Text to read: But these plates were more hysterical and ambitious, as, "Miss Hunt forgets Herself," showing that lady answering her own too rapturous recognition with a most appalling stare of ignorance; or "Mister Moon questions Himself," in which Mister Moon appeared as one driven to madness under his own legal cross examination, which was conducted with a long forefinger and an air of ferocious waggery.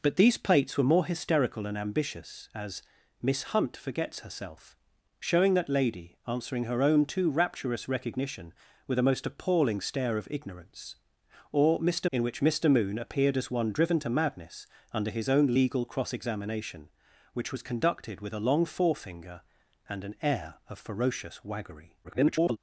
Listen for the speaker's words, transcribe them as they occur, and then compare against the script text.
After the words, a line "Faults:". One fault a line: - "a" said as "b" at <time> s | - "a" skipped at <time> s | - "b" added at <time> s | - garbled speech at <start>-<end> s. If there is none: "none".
But these plates were more hysterical and ambitious, as, "Miss Hunt forgets Herself," showing that lady answering her own too rapturous recognition with a most appalling stare of ignorance; or "Mister," In which Mister Moon appeared as one driven to madness under his own legal cross examination, which was conducted with a long forefinger and an air of ferocious waggery. [garbled]
Faults:
- "Moon questions Himself" skipped at 12.1 s
- garbled speech at 22.0-22.6 s